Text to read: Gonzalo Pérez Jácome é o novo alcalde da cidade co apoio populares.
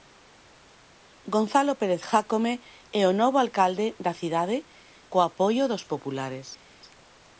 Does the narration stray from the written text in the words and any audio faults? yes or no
yes